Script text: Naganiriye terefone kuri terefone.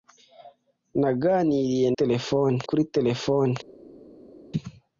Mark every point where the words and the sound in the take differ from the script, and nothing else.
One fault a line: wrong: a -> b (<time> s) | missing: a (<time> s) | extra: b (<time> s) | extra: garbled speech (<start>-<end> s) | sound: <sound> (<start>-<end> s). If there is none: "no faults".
no faults